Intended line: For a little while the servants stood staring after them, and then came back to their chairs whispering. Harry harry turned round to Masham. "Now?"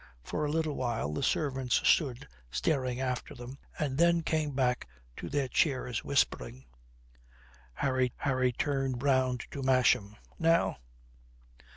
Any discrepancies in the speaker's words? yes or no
no